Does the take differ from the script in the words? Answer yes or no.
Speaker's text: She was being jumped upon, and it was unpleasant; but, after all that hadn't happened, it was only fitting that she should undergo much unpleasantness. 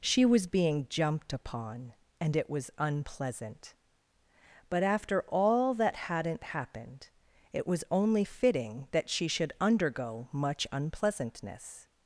no